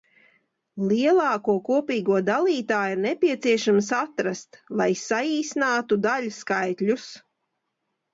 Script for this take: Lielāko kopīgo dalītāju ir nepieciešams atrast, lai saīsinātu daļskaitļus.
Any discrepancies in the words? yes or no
no